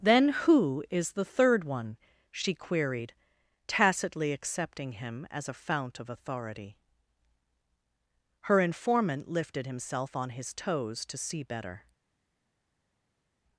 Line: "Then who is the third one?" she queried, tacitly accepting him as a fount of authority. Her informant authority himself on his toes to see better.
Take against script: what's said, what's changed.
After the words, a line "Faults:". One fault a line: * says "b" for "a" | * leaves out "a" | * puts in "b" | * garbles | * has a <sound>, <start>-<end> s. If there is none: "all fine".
"Then who is the third one?" she queried, tacitly accepting him as a fount of authority. Her informant lifted himself on his toes to see better.
Faults:
* says "lifted" for "authority"